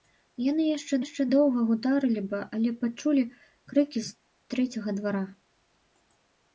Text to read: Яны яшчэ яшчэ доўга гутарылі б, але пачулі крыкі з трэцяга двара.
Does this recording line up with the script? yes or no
yes